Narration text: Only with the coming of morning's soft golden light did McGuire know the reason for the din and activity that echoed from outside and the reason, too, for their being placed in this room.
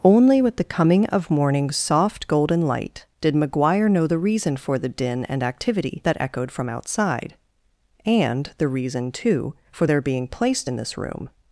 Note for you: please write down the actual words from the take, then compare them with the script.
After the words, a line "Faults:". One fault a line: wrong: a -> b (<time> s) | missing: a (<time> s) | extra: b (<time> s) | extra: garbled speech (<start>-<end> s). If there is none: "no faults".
Only with the coming of morning's soft golden light did McGuire know the reason for the din and activity that echoed from outside and the reason, too, for their being placed in this room.
Faults:
no faults